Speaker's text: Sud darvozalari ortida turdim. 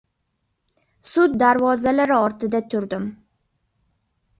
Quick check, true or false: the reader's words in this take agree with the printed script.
true